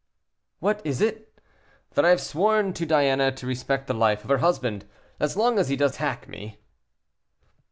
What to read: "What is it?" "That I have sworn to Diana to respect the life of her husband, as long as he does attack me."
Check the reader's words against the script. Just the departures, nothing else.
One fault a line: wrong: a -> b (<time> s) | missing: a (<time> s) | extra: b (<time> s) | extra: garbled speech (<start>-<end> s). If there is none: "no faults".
no faults